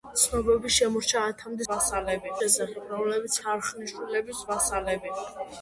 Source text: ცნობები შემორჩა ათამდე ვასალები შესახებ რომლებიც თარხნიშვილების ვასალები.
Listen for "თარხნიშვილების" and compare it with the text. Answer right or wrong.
right